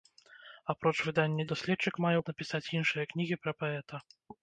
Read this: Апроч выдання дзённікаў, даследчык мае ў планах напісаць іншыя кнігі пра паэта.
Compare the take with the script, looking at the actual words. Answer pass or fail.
fail